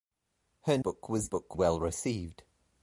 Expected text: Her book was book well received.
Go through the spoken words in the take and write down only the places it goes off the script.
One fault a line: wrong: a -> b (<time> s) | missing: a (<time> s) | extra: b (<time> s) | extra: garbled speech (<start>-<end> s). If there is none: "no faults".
no faults